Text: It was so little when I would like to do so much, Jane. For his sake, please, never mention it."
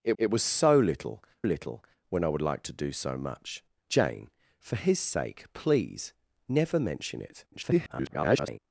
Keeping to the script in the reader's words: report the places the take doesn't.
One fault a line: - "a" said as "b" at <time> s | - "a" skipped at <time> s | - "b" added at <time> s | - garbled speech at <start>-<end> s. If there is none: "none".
- "it" added at 0.2 s
- "little" added at 1.4 s
- garbled speech at 7.5-8.6 s